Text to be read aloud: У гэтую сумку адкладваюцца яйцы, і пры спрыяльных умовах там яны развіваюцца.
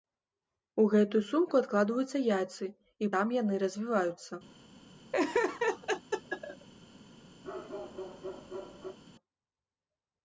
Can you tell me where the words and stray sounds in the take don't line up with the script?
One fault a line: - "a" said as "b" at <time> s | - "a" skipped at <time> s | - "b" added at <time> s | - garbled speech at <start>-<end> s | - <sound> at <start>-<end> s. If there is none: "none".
- "пры спрыяльных умовах" skipped at 3.1 s
- laugh at 5.1-6.7 s
- bark at 7.4-9.0 s